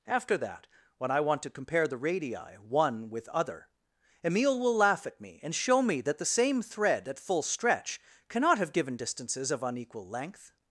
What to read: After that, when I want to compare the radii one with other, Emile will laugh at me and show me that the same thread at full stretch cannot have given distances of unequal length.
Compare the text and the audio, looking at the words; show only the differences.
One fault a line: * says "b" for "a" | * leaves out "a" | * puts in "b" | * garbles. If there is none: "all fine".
all fine